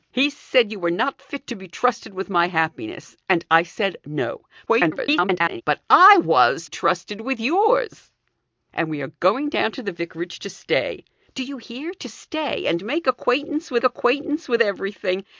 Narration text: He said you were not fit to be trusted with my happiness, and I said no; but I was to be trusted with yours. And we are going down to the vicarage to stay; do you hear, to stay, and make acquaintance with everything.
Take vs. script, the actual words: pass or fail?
fail